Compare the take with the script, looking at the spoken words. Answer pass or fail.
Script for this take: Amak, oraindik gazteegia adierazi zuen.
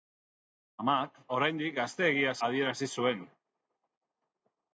pass